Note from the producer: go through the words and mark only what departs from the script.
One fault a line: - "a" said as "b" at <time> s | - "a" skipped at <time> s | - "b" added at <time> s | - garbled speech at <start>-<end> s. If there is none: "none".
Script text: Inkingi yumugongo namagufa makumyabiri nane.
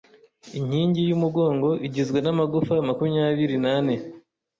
- "igizwe" added at 1.9 s